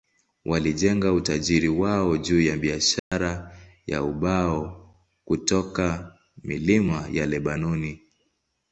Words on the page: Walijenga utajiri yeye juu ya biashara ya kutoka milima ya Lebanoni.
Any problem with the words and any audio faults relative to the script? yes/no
yes